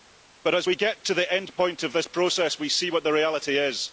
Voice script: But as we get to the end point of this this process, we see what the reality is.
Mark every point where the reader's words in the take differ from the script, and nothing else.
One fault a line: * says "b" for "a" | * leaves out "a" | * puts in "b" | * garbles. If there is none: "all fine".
* leaves out "this"